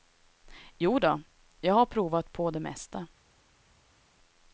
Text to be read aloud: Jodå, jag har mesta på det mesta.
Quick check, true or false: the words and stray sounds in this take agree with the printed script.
false